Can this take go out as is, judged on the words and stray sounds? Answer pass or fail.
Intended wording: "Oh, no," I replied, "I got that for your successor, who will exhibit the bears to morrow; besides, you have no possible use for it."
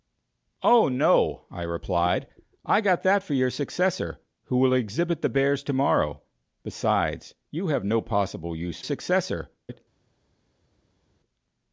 fail